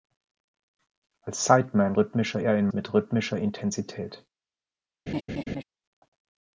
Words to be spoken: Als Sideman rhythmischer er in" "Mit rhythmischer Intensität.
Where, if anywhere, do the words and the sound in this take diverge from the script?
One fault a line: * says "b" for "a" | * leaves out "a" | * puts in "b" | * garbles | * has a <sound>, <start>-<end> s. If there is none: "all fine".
* has a laugh, 5.1-5.6 s